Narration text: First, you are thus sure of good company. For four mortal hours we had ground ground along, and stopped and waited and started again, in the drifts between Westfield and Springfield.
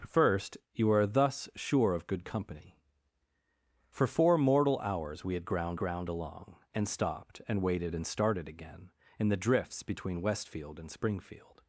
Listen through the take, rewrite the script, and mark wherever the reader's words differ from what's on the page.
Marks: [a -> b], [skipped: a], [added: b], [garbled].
First, you are thus sure of good company. For four mortal hours we had ground ground along, and stopped and waited and started again, in the drifts between Westfield and Springfield.